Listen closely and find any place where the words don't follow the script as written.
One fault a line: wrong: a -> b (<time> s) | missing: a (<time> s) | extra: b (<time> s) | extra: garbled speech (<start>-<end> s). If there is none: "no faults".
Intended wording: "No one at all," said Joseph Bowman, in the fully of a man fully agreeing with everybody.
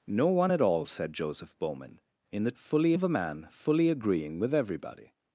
no faults